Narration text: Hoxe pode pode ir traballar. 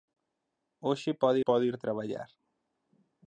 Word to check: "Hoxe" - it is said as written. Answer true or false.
true